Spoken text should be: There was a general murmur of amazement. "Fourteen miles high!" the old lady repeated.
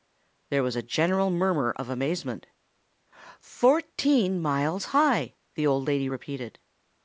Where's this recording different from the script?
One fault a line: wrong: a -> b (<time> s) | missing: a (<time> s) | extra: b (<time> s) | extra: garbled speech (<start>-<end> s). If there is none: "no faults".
no faults